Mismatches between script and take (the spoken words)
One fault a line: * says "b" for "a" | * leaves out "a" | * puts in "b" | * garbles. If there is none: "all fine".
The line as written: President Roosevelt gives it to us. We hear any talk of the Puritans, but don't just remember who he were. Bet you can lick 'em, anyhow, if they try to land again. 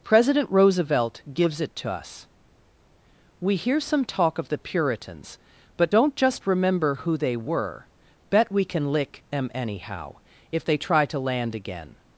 * says "some" for "any"
* says "they" for "he"
* says "we" for "you"